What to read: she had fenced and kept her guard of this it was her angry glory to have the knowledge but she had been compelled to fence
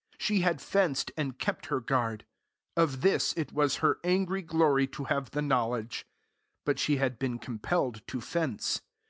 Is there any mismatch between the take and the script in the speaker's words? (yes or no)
no